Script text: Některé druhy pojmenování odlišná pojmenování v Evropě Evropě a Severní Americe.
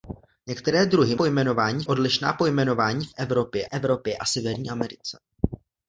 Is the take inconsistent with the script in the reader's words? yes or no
no